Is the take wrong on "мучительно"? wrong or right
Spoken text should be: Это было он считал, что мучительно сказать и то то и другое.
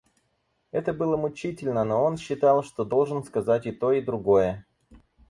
wrong